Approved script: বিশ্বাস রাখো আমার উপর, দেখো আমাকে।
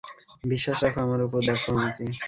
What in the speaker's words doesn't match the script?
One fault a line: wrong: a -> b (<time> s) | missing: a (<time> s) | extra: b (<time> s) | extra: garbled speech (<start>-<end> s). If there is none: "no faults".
no faults